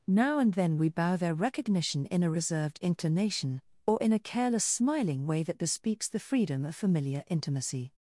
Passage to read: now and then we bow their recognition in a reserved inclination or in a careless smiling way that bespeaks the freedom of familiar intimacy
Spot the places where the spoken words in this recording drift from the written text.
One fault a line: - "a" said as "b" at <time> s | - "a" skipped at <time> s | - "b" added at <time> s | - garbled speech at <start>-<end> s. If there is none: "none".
none